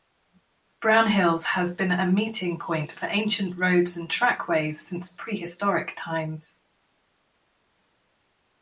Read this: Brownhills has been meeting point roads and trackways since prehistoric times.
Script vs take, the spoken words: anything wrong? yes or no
yes